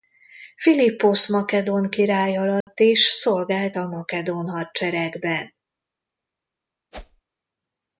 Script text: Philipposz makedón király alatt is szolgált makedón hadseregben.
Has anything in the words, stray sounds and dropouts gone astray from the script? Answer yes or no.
yes